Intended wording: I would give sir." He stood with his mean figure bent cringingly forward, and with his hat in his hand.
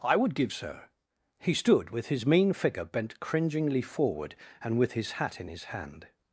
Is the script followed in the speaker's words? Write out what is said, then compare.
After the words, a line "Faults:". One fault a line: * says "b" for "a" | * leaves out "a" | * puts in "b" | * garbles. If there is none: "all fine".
I would give sir." He stood with his mean figure bent cringingly forward, and with his hat in his hand.
Faults:
all fine